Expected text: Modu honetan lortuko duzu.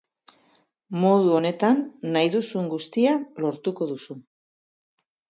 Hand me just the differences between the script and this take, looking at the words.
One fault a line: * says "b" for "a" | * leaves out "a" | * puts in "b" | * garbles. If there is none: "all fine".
* puts in "nahi duzun guztia"